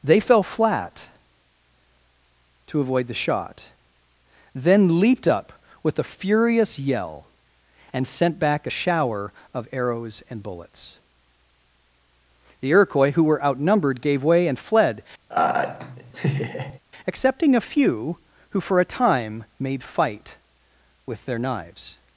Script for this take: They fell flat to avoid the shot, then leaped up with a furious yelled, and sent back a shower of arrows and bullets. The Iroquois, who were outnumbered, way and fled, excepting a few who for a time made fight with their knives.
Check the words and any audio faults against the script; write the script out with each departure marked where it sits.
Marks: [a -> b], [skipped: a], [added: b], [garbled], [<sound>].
They fell flat to avoid the shot, then leaped up with a furious [yelled, -> yell] and sent back a shower of arrows and bullets. The Iroquois, who were outnumbered, [added: gave] way and fled, [laugh] excepting a few who for a time made fight with their knives.